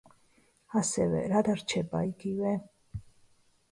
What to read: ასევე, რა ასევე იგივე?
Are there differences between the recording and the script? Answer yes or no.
yes